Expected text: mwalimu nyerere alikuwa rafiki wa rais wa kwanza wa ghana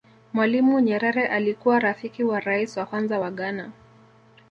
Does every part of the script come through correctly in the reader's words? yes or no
yes